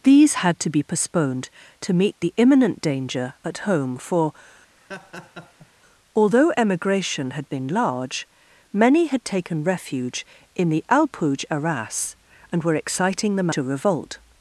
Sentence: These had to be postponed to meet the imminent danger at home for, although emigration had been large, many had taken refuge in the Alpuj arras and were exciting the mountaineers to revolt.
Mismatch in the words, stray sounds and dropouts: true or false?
true